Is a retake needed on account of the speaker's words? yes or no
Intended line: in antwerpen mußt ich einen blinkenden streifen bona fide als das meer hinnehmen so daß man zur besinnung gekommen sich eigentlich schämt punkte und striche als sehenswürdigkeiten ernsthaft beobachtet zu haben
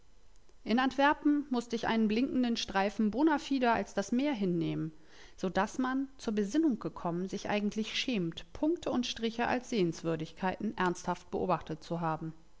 no